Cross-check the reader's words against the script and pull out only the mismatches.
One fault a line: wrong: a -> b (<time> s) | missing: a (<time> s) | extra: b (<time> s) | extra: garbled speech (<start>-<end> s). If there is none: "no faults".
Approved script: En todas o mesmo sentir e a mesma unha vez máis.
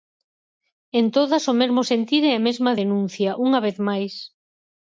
extra: denuncia (2.8 s)